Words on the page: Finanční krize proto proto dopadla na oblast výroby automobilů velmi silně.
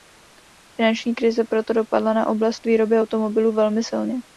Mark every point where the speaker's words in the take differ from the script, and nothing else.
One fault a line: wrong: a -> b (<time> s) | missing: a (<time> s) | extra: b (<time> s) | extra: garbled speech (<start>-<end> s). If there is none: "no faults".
missing: proto (1.7 s)